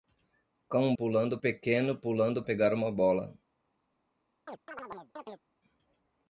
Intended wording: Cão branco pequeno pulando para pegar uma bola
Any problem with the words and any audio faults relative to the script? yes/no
yes